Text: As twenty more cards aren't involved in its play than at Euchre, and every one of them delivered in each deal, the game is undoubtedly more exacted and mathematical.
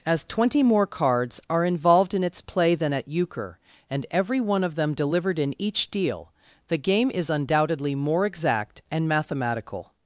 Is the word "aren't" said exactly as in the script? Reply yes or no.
no